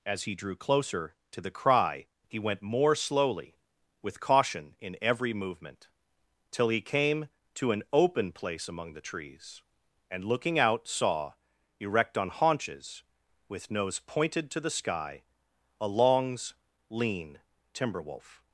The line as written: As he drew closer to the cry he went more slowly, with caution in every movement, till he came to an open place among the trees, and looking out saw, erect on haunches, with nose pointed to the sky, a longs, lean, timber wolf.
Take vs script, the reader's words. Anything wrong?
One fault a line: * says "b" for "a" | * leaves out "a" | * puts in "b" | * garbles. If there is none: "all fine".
all fine